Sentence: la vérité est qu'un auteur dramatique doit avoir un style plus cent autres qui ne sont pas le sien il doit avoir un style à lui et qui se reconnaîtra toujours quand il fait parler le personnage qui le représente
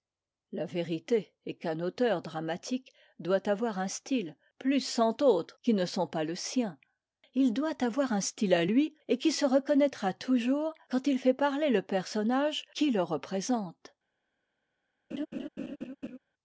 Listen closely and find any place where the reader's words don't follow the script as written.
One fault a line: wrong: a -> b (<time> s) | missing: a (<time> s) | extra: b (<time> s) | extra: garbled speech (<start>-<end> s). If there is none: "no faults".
no faults